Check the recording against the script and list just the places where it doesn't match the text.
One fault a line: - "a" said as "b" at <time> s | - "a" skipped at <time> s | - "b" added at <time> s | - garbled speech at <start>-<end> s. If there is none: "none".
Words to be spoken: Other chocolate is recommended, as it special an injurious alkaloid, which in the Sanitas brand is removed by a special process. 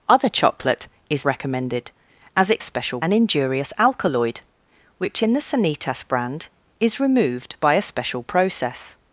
none